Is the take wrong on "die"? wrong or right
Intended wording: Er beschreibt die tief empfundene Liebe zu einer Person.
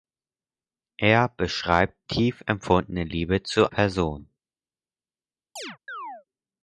wrong